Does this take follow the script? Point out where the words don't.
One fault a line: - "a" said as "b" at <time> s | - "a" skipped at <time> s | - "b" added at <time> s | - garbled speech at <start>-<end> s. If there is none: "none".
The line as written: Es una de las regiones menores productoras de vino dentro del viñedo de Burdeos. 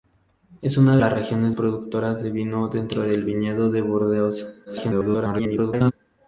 - "de" skipped at 1.0 s
- "menores" skipped at 1.6 s
- garbled speech at 4.7-5.9 s